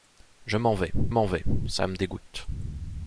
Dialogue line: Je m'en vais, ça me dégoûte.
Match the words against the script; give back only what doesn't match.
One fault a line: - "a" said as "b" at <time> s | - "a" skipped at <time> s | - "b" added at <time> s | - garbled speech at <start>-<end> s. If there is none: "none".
- "m'en vais" added at 1.1 s